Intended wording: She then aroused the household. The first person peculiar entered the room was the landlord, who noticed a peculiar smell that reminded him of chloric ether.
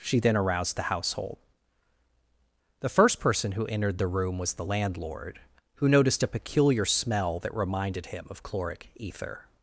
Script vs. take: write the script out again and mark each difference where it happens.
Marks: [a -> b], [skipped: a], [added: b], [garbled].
She then aroused the household. The first person [peculiar -> who] entered the room was the landlord, who noticed a peculiar smell that reminded him of chloric ether.